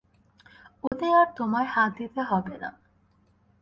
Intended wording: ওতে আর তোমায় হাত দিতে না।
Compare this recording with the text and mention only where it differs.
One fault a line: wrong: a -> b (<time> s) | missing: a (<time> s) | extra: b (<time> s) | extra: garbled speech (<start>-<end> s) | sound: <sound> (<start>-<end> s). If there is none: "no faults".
sound: dropout (0.9-0.9 s)
extra: হবে (2.2 s)